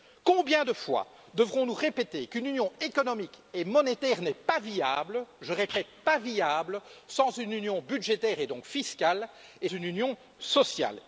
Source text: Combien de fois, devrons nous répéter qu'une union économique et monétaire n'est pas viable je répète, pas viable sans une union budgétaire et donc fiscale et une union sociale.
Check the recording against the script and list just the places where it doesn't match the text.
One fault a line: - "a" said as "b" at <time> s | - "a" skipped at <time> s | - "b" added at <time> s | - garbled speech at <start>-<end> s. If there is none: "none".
none